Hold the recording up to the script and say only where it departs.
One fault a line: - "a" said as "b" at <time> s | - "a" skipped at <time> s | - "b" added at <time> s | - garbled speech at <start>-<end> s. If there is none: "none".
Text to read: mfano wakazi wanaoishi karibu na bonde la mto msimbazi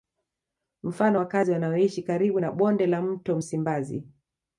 none